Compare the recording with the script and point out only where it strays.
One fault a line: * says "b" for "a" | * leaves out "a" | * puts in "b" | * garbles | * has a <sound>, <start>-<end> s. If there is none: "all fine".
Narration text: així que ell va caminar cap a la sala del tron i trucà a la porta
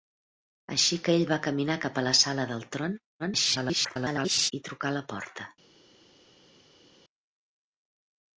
* garbles